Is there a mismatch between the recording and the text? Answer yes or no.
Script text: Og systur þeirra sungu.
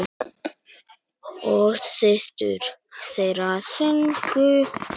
no